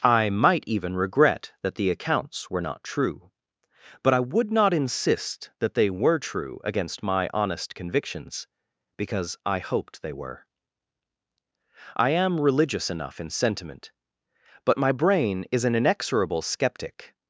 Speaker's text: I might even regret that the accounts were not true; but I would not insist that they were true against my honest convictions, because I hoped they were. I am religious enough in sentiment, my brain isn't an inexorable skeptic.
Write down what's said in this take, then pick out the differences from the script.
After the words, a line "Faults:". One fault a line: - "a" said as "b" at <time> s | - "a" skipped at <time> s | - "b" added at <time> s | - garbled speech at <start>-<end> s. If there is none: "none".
I might even regret that the accounts were not true; but I would not insist that they were true against my honest convictions, because I hoped they were. I am religious enough in sentiment, but my brain is an inexorable skeptic.
Faults:
- "but" added at 14.7 s
- "isn't" said as "is" at 15.5 s